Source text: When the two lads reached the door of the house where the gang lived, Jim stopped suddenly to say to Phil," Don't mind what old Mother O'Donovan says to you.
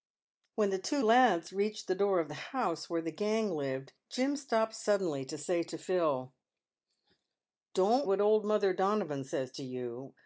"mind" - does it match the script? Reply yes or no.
no